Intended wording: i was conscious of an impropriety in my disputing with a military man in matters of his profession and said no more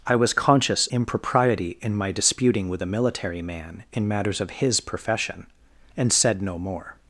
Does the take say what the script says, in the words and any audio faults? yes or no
no